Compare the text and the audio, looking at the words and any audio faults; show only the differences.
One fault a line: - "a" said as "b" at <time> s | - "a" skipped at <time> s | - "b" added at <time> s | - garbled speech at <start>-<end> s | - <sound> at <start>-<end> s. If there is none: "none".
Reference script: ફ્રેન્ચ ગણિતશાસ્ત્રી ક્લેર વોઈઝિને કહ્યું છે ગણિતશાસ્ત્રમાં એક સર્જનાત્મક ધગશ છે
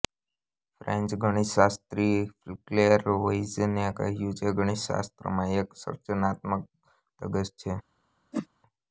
- whoosh at 8.3-8.5 s